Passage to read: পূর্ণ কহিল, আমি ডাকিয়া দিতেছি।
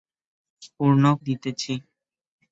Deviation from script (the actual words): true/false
true